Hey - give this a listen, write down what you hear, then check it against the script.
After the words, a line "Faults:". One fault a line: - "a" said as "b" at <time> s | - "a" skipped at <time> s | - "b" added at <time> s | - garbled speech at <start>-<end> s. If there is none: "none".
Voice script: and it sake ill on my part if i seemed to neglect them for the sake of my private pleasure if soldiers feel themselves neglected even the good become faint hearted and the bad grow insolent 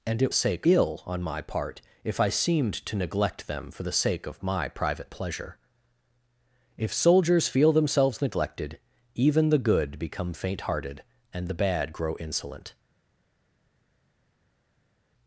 and it sake ill on my part if i seemed to neglect them for the sake of my private pleasure if soldiers feel themselves neglected even the good become faint hearted and the bad grow insolent
Faults:
none